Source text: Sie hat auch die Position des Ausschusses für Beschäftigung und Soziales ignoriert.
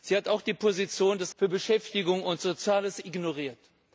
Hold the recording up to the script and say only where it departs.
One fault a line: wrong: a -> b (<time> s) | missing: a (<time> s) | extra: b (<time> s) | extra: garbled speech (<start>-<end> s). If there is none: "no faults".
missing: Ausschusses (1.4 s)